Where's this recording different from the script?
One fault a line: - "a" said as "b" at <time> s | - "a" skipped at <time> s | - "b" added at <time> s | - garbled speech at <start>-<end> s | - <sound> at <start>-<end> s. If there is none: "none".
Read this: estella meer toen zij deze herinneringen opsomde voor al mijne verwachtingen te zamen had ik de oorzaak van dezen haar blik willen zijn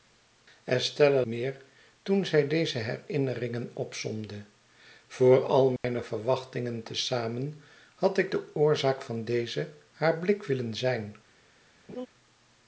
- dropout at 5.8-5.8 s
- laugh at 11.9-12.1 s